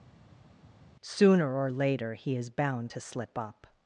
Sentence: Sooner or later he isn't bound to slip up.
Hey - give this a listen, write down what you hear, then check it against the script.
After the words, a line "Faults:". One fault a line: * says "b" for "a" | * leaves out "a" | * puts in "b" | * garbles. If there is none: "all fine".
Sooner or later he is bound to slip up.
Faults:
* says "is" for "isn't"